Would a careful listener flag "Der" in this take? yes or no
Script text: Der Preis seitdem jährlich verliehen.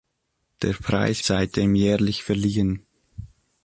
no